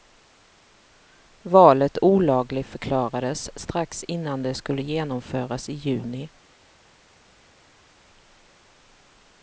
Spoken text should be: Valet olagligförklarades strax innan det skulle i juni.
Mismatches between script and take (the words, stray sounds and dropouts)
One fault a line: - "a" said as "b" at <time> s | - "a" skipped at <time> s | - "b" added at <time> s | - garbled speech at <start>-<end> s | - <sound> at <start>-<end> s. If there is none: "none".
- "genomföras" added at 4.8 s